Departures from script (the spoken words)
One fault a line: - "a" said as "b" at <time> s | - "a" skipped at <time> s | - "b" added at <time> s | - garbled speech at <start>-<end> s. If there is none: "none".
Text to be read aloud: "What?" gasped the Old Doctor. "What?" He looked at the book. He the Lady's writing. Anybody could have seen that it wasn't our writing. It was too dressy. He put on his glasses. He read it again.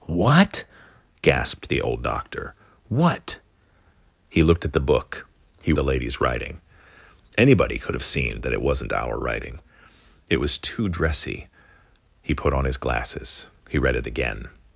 none